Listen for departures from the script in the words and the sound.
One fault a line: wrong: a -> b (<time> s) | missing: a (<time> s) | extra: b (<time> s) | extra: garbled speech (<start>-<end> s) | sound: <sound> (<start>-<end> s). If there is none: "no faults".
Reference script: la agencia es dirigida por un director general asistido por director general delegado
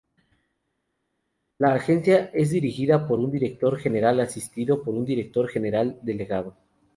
extra: un (4.9 s)